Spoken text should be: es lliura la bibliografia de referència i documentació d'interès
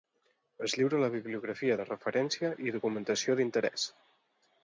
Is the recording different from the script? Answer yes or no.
no